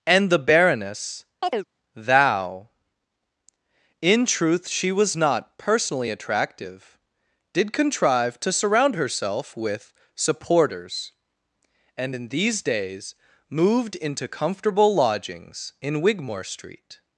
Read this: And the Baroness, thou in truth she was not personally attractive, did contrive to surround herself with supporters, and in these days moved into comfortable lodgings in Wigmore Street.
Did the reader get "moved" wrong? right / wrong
right